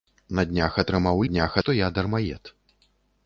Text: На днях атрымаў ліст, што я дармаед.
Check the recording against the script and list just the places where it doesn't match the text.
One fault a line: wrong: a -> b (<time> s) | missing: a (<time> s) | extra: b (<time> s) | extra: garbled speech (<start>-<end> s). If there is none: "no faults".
wrong: ліст -> днях (1.3 s)